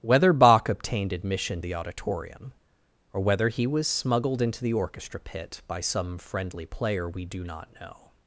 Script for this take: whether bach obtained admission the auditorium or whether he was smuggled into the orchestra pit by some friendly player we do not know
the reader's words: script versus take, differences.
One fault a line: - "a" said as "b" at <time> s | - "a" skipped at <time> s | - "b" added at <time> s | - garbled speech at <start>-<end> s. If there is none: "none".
none